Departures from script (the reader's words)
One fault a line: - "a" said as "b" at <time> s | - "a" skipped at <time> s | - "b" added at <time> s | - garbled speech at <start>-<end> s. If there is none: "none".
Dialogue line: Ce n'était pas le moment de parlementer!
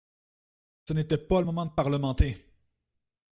none